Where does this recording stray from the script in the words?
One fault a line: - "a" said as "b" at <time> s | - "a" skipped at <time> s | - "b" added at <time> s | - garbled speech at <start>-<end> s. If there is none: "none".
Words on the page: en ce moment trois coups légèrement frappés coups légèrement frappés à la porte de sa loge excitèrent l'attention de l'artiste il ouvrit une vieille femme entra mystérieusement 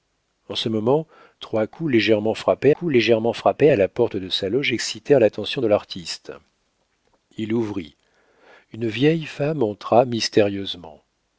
none